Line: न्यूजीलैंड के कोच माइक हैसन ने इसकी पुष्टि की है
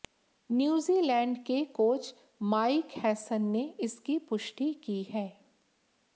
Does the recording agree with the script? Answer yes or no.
yes